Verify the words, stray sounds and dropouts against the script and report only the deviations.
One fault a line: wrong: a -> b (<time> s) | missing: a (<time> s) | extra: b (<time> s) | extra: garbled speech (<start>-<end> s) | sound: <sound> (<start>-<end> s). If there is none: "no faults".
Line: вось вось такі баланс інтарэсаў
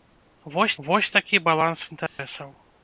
sound: dropout (2.1-2.2 s)